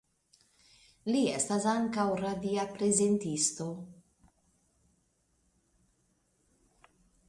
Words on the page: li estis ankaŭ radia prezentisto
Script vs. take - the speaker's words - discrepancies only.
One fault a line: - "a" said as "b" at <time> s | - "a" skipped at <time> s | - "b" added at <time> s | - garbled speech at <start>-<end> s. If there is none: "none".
- "estis" said as "estas" at 1.4 s